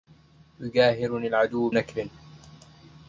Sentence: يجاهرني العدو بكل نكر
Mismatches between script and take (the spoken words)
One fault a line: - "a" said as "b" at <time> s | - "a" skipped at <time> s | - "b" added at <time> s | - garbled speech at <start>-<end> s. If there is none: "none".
- "بكل" skipped at 1.7 s